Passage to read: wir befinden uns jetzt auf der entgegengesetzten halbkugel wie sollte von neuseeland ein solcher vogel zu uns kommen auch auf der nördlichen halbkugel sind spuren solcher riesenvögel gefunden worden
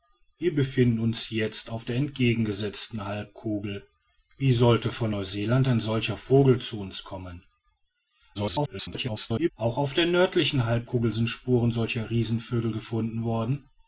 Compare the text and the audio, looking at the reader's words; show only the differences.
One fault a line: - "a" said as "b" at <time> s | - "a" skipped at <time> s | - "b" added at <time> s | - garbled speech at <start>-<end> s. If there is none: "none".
- garbled speech at 8.3-9.5 s